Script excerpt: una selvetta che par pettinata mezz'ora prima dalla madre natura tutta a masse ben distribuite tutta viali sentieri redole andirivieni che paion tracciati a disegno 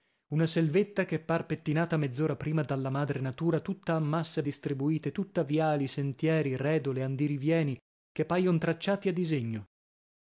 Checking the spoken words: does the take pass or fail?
fail